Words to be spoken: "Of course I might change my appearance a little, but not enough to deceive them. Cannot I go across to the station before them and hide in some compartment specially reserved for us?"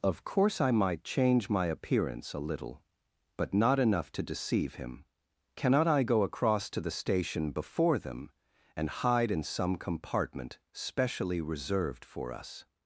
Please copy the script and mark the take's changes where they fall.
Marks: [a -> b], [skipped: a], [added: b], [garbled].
"Of course I might change my appearance a little, but not enough to deceive [them. -> him] Cannot I go across to the station before them and hide in some compartment specially reserved for us?"